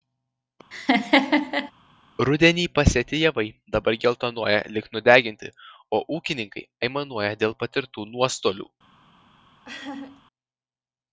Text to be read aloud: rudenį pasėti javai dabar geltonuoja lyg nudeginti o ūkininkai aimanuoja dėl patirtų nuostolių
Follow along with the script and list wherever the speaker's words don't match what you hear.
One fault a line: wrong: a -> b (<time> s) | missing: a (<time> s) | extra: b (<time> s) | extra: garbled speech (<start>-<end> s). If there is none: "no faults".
no faults